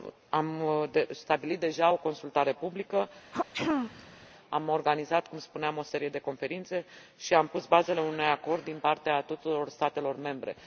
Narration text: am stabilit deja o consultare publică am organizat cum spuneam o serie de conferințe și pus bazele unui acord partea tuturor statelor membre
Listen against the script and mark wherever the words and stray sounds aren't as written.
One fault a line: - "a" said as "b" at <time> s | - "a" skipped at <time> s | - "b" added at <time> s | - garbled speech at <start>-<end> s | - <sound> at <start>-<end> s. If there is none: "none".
- throat clearing at 3.3-4.3 s
- "am" added at 7.3 s
- "din" added at 8.6 s